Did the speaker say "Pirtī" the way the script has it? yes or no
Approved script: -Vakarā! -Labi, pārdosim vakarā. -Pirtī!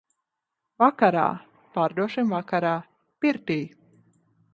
yes